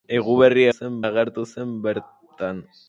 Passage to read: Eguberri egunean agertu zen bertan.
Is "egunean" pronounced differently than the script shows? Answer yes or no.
yes